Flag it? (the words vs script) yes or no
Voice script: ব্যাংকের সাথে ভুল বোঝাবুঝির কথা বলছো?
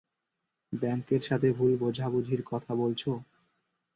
no